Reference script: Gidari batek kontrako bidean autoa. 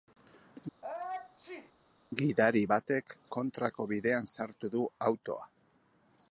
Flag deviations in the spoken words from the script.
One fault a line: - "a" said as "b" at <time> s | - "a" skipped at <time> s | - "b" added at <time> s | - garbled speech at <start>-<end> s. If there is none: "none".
- "sartu du" added at 4.4 s